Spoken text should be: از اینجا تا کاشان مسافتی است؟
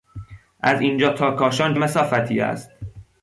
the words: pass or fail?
pass